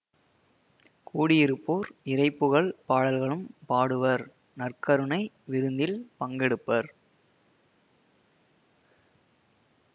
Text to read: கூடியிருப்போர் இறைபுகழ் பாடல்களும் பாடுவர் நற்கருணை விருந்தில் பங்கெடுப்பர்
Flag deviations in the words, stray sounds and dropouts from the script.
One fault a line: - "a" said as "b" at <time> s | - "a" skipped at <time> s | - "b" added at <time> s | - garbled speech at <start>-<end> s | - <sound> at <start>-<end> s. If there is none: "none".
none